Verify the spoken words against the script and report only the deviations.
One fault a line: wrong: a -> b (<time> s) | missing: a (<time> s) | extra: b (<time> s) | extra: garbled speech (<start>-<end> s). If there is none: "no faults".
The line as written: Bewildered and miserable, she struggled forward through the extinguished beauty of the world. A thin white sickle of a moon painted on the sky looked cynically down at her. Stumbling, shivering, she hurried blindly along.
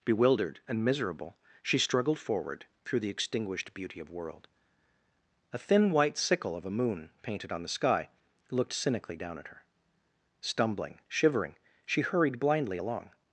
missing: the (4.1 s)